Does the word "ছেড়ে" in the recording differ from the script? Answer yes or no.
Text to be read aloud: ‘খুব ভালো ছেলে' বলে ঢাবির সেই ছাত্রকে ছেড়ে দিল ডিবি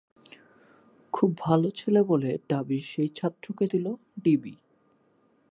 yes